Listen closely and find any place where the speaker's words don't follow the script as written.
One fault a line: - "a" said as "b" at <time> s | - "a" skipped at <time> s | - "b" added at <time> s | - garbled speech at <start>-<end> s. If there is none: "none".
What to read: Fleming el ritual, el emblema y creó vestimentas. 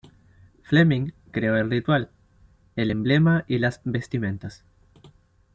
- "creó" added at 1.3 s
- "creó" said as "las" at 3.6 s